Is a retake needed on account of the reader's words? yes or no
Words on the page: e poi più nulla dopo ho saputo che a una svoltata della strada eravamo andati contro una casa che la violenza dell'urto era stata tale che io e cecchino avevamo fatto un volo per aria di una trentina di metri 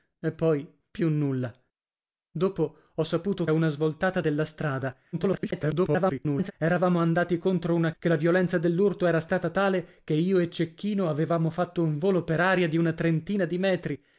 yes